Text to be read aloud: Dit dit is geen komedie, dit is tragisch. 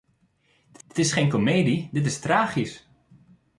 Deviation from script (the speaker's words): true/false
false